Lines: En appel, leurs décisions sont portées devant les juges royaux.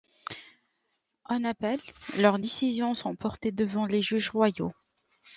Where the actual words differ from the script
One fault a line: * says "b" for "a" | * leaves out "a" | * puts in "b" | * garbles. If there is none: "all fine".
all fine